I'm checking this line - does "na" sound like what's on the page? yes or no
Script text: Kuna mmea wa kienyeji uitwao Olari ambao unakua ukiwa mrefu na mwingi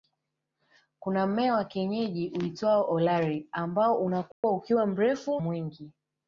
no